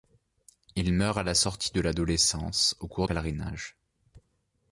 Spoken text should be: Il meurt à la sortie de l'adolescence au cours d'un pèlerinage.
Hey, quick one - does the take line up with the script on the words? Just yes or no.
no